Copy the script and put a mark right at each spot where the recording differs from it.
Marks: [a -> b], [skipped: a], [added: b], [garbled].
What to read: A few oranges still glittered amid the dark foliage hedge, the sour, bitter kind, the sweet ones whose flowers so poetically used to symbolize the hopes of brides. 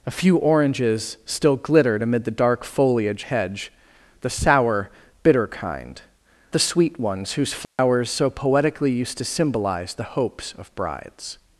A few oranges still glittered amid the dark foliage hedge, the sour, bitter kind, the sweet ones whose flowers so poetically used to symbolize the hopes of brides.